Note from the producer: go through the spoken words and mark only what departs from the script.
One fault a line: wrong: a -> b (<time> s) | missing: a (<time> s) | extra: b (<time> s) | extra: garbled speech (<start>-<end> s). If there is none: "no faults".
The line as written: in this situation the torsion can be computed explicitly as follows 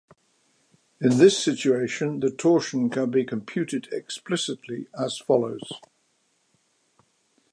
no faults